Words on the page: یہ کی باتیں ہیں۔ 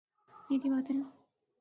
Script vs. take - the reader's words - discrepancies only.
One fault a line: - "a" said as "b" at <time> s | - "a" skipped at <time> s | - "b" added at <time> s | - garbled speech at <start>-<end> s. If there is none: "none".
none